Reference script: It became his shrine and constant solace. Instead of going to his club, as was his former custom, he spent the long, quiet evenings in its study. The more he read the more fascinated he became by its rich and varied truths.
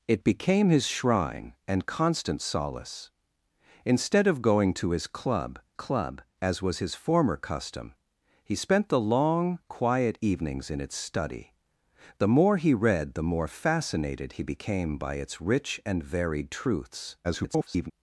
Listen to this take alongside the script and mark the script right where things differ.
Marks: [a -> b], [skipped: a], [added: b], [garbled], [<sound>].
It became his shrine and constant solace. Instead of going to his club, [added: club] as was his former custom, he spent the long, quiet evenings in its study. The more he read the more fascinated he became by its rich and varied truths. [garbled]